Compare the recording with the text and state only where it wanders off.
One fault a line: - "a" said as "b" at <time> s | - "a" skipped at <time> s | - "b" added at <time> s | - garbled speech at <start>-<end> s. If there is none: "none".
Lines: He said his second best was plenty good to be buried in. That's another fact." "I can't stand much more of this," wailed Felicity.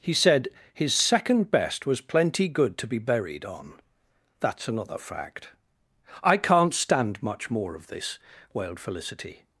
- "in" said as "on" at 3.5 s